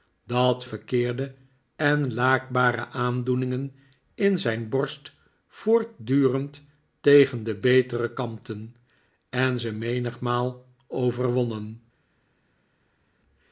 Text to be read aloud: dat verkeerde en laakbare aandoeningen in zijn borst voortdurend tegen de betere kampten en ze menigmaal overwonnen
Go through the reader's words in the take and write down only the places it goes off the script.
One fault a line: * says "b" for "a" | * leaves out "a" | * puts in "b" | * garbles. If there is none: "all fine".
all fine